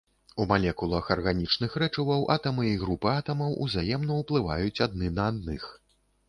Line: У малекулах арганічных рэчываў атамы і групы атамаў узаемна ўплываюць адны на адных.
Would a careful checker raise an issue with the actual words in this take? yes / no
no